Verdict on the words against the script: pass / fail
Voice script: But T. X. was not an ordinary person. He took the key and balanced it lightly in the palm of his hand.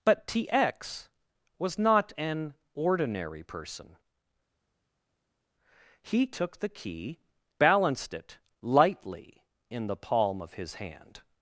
fail